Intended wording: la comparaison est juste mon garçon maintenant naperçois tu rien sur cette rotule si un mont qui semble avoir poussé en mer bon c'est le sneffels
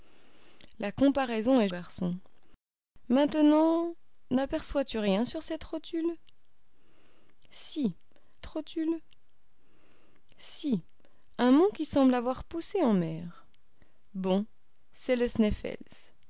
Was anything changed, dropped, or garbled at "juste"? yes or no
yes